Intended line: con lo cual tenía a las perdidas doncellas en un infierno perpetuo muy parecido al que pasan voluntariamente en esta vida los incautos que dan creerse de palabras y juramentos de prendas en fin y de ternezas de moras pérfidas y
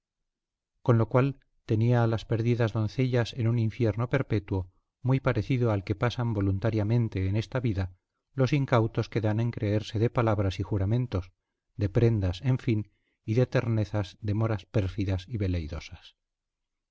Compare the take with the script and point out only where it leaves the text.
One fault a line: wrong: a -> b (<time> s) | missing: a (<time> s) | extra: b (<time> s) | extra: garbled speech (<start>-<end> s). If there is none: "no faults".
extra: en (9.4 s)